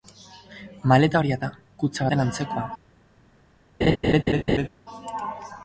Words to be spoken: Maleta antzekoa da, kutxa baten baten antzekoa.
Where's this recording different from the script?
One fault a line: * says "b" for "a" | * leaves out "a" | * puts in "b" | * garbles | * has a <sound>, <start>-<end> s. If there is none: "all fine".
* says "horia" for "antzekoa"
* leaves out "baten"
* has a laugh, 3.8-4.7 s